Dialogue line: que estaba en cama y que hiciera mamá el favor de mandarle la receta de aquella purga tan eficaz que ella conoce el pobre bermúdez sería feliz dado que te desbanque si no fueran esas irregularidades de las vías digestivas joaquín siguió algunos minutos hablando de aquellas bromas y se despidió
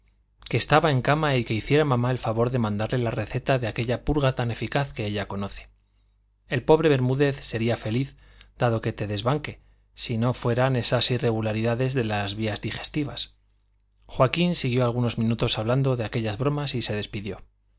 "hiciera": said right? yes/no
yes